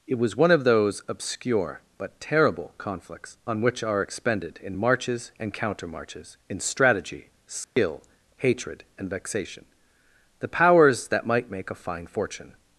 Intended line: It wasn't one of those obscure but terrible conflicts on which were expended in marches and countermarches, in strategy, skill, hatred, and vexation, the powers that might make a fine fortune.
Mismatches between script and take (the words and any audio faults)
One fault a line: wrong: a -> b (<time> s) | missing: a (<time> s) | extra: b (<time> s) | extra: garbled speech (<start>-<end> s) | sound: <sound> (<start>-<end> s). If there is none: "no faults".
wrong: wasn't -> was (0.2 s)
wrong: were -> are (3.8 s)
sound: dropout (7.6-7.8 s)